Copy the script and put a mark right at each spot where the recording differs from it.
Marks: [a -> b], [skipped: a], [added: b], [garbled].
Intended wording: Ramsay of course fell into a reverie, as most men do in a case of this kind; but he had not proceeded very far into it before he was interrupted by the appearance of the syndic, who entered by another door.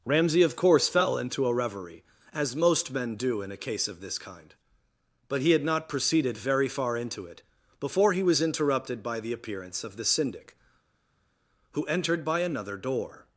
Ramsay of course fell into a reverie, as most men do in a case of this kind; but he had not proceeded very far into it before he was interrupted by the appearance of the syndic, who entered by another door.